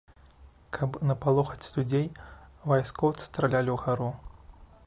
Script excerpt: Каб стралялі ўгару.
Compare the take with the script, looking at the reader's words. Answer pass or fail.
fail